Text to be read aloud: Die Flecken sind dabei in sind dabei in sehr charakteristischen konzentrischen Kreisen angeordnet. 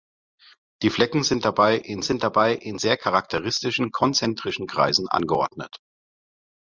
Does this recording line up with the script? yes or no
yes